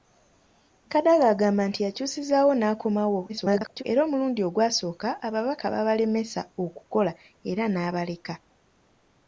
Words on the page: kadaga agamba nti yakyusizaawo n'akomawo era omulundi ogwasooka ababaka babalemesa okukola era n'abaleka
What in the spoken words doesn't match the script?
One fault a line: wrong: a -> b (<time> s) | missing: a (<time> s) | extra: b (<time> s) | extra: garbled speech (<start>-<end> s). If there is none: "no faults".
extra: garbled speech (3.3-3.8 s)